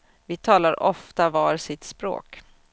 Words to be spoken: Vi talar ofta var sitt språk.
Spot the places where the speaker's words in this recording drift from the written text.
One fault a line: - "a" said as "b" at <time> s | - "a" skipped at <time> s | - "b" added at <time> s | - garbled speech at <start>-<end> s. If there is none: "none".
none